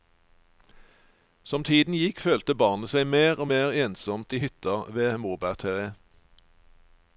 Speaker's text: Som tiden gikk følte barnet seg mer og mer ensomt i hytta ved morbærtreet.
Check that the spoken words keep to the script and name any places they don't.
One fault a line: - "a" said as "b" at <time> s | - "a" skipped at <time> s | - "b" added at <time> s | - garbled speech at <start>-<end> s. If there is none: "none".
none